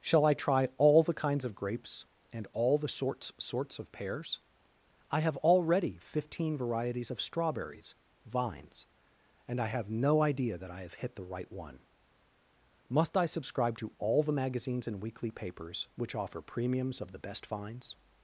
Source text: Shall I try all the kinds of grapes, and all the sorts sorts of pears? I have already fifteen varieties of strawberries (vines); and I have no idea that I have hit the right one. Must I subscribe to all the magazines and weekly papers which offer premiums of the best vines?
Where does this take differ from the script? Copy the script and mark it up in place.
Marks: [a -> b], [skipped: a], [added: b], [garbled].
Shall I try all the kinds of grapes, and all the sorts sorts of pears? I have already fifteen varieties of strawberries (vines); and I have no idea that I have hit the right one. Must I subscribe to all the magazines and weekly papers which offer premiums of the best vines?